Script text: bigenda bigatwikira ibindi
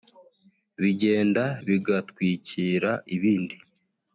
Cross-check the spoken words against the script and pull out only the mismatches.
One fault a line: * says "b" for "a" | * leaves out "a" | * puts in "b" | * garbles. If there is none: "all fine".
all fine